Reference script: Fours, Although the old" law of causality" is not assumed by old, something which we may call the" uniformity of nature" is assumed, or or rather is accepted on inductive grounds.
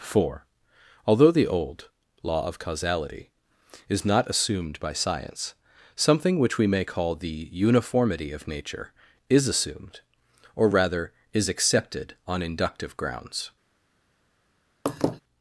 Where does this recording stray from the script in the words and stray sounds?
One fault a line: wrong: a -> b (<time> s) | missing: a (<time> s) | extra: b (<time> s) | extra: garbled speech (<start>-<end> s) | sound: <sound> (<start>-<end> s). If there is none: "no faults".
wrong: Fours -> Four (0.0 s)
wrong: old -> science (4.9 s)
missing: or (10.7 s)
sound: laugh (14.9-15.2 s)